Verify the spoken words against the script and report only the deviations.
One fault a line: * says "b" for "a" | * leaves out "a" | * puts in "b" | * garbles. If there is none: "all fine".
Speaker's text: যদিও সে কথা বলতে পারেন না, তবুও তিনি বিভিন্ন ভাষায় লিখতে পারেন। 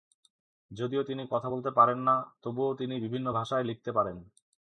* says "তিনি" for "সে"